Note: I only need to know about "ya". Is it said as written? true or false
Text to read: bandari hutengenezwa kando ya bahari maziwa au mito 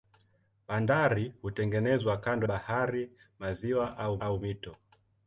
false